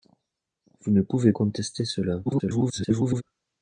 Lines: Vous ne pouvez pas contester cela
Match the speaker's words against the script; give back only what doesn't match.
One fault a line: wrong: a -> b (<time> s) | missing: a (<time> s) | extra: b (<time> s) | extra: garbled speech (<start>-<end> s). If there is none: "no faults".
missing: pas (1.3 s)
extra: garbled speech (2.2-3.2 s)